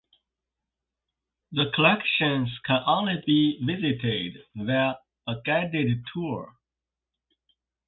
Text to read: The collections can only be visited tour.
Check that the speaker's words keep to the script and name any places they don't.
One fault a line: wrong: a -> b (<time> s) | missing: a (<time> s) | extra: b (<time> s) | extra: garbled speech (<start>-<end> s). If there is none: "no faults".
extra: via a guided (4.5 s)